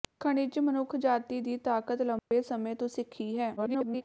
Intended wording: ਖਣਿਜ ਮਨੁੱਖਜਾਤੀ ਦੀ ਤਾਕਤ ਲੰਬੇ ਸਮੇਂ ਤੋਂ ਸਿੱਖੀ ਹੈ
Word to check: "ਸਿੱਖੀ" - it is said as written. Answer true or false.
true